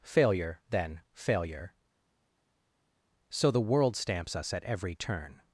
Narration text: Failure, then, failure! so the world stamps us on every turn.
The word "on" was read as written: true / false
false